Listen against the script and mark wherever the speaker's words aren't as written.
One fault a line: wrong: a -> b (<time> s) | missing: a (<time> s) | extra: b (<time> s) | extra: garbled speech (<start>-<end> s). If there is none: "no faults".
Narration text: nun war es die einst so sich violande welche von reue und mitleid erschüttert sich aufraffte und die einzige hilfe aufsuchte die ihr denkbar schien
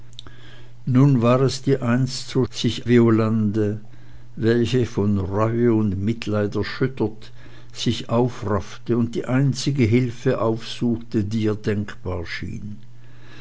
no faults